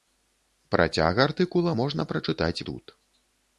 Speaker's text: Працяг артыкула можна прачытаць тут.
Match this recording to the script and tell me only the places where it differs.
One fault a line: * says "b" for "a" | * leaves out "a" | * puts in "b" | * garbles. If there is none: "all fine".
all fine